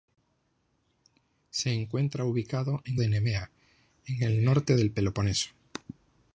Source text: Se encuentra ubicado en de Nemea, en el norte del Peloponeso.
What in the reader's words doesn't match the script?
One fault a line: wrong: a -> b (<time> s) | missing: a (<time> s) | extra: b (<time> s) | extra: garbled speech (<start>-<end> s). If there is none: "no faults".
no faults